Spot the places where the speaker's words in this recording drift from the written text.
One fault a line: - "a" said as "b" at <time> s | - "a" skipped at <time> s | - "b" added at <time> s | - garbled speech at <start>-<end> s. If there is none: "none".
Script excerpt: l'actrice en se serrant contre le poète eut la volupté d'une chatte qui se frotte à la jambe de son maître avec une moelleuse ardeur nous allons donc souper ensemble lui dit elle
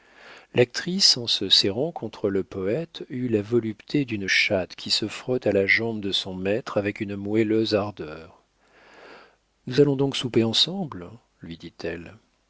none